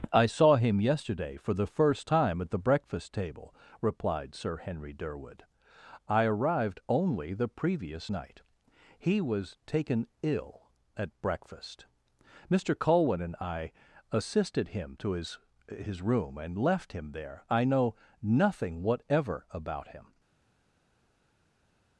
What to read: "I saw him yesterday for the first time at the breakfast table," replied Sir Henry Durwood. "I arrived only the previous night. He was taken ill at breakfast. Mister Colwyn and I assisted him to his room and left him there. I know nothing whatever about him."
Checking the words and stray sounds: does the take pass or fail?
fail